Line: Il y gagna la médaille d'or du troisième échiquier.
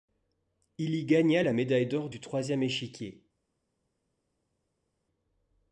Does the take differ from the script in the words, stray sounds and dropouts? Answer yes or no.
no